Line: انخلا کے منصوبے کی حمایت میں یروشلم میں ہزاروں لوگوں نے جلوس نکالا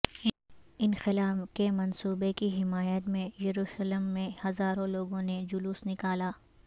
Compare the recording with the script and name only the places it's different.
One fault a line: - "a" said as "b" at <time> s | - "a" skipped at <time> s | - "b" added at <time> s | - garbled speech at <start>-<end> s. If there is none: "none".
none